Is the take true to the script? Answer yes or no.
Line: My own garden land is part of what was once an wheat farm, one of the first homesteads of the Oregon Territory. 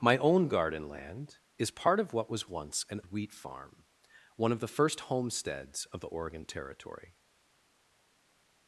yes